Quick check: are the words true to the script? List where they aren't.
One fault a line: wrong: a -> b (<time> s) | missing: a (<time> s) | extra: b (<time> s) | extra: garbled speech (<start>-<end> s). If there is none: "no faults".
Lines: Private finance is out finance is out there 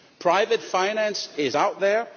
missing: finance is out (1.8 s)